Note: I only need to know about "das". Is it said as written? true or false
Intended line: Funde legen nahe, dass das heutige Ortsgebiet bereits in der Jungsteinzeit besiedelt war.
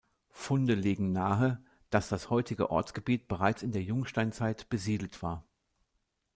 true